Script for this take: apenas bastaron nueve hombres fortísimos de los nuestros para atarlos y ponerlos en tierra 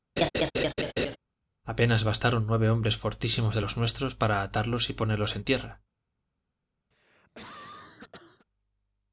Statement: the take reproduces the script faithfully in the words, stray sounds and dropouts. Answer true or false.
false